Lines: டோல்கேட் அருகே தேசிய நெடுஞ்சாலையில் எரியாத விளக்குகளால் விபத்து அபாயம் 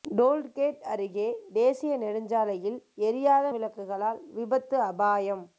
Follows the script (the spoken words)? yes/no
yes